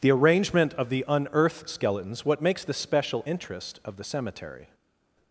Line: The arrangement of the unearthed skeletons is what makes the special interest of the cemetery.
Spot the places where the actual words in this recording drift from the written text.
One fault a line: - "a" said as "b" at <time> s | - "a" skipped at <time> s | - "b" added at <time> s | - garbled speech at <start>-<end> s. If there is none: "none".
- "is" skipped at 2.2 s